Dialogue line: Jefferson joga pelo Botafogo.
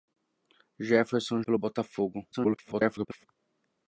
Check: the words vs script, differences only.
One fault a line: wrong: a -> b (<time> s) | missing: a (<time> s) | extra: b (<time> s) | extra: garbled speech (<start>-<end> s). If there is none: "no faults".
missing: joga (1.4 s)
extra: garbled speech (2.3-3.3 s)